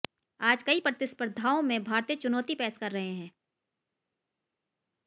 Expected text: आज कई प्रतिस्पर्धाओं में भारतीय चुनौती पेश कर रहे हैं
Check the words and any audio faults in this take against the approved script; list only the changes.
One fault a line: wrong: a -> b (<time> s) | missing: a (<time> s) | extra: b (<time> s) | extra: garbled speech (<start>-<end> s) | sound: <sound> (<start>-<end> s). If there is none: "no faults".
no faults